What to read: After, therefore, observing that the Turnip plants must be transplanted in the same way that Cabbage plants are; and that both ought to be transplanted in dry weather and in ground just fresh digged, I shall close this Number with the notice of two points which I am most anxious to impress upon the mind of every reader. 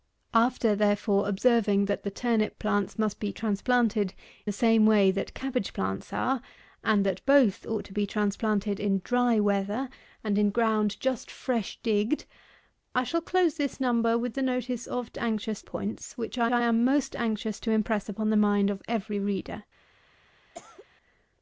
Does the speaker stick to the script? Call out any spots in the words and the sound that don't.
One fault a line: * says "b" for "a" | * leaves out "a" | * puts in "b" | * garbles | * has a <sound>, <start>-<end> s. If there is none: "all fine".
* leaves out "in"
* says "anxious" for "two"
* puts in "I"
* has a cough, 20.5-20.9 s